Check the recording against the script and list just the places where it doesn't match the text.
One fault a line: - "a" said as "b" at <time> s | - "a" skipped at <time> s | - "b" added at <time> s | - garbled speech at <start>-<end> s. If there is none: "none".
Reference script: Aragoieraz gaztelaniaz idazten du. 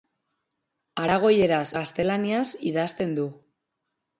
none